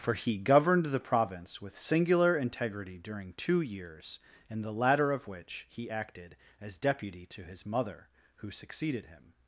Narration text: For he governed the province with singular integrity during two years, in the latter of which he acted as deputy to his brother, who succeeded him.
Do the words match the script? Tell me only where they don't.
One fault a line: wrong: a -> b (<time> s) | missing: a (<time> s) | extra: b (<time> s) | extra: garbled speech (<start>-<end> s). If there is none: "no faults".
wrong: brother -> mother (7.7 s)